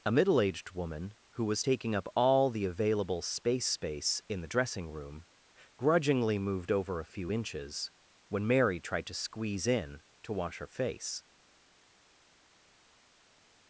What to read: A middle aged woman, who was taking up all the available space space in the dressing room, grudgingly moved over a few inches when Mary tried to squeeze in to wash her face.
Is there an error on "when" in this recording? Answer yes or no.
no